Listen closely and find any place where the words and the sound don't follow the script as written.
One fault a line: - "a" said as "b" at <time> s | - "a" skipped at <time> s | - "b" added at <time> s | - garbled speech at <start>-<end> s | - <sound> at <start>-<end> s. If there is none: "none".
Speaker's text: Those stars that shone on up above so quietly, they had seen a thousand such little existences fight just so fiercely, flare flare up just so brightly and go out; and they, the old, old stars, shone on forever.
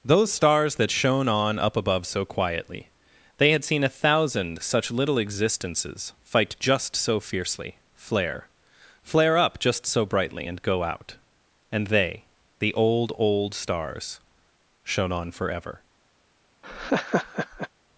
- laugh at 16.6-17.7 s